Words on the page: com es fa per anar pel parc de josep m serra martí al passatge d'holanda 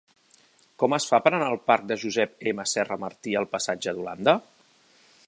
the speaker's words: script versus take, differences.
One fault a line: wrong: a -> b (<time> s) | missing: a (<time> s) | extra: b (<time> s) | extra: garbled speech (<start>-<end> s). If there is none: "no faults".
wrong: pel -> del (1.5 s)